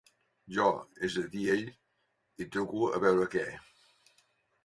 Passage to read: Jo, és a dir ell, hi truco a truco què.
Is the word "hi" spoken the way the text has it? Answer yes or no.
yes